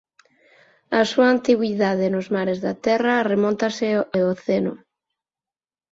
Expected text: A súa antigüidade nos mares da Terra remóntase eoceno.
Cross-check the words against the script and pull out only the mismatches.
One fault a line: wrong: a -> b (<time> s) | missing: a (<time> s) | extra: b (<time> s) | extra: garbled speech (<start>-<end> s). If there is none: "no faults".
no faults